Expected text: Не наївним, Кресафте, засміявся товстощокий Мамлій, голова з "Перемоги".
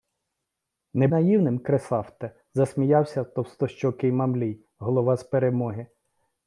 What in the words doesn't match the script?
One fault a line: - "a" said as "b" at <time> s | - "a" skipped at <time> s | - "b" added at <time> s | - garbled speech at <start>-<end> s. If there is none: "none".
none